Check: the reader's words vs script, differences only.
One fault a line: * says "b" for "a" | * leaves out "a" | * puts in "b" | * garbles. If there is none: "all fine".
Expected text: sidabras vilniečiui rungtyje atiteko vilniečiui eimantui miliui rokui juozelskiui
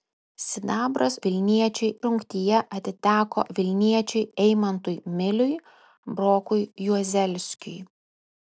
all fine